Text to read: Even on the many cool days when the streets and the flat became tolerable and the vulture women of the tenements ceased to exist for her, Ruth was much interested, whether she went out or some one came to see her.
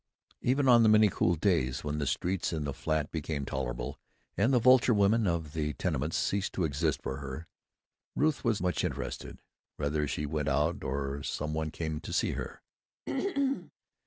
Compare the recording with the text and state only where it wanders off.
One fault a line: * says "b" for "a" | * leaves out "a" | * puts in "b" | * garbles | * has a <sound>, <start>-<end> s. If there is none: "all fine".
* has a throat clearing, 13.1-13.7 s